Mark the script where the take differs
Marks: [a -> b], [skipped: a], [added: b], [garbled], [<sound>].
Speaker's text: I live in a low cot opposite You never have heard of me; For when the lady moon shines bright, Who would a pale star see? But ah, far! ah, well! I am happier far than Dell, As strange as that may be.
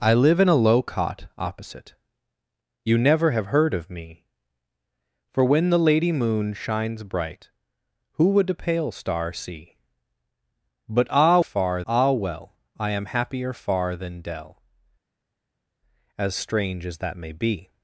I live in a low cot opposite You never have heard of me; For when the lady moon shines bright, Who would a pale star see? But ah, far! ah, well! I am happier far than Dell, As strange as that may be.